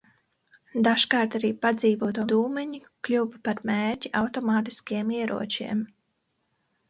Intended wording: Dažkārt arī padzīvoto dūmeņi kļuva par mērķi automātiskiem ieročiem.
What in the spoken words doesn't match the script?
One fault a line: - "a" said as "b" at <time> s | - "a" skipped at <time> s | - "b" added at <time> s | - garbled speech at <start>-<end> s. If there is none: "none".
none